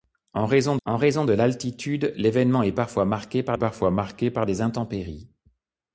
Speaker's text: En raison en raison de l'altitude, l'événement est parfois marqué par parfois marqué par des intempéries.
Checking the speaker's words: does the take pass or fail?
pass